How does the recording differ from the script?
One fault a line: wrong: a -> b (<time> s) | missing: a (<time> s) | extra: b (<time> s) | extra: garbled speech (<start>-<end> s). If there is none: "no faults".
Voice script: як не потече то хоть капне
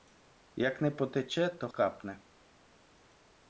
missing: хоть (1.7 s)